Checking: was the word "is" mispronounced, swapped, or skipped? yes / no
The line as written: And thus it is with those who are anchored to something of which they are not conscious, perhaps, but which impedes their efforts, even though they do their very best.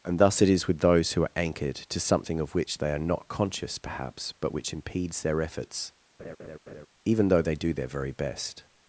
no